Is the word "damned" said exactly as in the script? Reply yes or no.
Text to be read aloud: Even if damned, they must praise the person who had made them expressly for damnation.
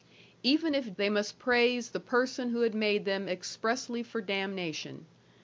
no